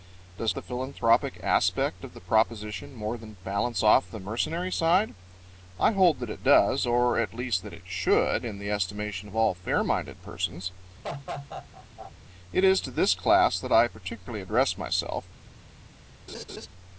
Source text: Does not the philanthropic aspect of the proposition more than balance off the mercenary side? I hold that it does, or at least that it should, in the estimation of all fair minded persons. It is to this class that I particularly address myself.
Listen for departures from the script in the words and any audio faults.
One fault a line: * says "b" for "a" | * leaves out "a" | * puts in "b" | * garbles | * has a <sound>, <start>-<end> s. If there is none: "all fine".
* leaves out "not"
* has a laugh, 11.0-12.1 s
* has a laugh, 16.3-16.7 s